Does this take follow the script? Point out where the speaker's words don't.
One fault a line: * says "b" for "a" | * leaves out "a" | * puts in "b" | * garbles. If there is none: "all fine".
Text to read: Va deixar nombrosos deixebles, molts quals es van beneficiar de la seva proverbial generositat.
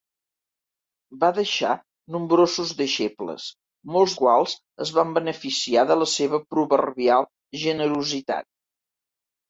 all fine